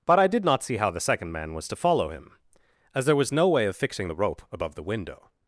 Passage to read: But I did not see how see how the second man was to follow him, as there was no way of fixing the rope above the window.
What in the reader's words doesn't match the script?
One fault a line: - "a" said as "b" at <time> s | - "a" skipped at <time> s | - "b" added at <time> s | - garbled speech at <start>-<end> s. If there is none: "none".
- "see how" skipped at 0.9 s